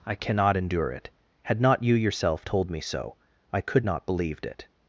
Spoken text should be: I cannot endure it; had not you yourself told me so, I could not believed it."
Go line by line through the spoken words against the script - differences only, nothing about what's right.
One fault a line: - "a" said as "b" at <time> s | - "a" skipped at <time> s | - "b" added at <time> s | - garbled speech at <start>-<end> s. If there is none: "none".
none